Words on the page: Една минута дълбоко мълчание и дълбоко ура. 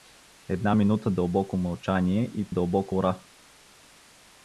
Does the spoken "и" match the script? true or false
true